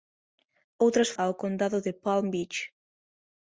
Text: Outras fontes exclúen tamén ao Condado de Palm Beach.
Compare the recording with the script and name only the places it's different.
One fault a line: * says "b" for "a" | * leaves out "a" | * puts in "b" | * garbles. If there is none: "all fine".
* leaves out "fontes exclúen tamén"